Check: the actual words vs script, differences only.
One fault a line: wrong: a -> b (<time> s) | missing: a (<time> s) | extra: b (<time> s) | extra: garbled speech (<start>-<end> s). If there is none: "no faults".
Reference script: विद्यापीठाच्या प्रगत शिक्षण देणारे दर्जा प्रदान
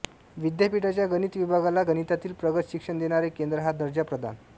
extra: गणित विभागाला गणितातील (1.1 s)
extra: केंद्र हा (3.3 s)